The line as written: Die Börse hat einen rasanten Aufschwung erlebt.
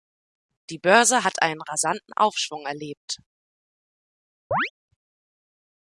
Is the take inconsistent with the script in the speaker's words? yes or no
no